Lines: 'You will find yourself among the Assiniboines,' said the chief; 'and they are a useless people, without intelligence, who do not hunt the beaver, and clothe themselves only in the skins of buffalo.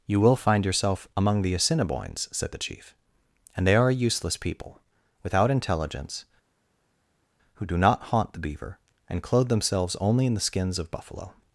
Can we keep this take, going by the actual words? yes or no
no